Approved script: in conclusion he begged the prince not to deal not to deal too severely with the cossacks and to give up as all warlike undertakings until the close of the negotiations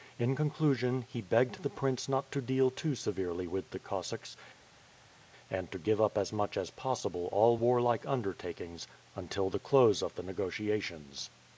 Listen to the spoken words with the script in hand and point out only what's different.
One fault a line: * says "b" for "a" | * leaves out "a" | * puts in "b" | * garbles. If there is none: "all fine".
* leaves out "not to deal"
* puts in "much as possible"